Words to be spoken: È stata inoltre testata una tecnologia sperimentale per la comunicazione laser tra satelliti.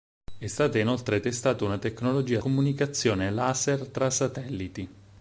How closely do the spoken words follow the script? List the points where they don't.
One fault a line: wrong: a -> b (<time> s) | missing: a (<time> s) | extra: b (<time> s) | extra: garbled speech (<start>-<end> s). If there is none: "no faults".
missing: sperimentale per la (2.4 s)